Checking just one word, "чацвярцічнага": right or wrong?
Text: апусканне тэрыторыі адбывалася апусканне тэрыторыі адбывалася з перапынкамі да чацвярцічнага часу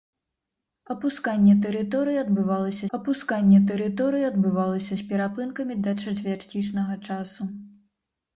right